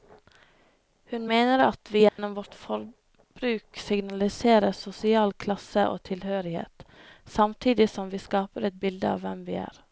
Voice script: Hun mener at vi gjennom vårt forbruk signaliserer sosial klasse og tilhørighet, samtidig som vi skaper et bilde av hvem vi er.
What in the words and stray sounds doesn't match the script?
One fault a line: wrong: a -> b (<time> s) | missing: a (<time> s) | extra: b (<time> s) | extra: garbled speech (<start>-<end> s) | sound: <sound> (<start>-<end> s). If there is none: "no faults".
sound: dropout (2.1-2.2 s)